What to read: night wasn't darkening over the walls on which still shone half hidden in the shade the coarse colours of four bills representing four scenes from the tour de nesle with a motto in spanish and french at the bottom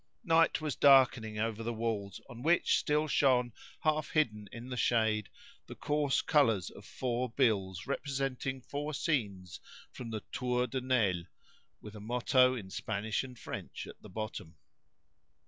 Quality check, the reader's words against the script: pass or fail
fail